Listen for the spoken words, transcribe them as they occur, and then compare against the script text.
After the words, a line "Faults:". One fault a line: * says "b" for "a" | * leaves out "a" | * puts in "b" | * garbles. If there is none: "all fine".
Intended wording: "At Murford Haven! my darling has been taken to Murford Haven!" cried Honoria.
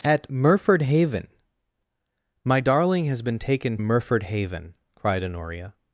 "At Murford Haven! my darling has been taken Murford Haven!" cried Honoria.
Faults:
* leaves out "to"